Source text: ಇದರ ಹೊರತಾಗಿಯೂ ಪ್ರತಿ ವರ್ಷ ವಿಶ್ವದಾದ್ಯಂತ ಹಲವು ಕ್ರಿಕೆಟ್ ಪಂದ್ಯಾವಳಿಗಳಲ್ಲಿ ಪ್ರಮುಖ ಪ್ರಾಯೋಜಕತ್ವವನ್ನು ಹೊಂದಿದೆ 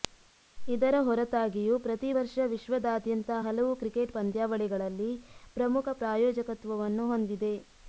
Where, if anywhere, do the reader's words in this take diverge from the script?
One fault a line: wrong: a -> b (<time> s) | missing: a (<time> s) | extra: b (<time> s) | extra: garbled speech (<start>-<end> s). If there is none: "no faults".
no faults